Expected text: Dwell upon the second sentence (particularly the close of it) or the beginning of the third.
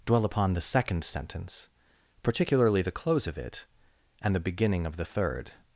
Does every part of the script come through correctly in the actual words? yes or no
no